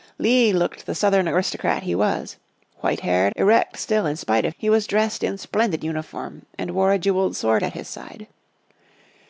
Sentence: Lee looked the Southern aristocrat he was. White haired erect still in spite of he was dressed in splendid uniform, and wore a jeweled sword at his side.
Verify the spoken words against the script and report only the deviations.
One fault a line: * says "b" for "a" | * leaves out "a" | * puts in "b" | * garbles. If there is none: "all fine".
all fine